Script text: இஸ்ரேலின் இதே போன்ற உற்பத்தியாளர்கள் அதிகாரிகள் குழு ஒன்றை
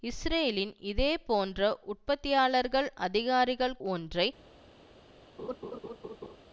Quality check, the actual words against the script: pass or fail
fail